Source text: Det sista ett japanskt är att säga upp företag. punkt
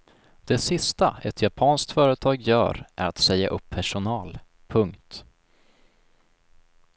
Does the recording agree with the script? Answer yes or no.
no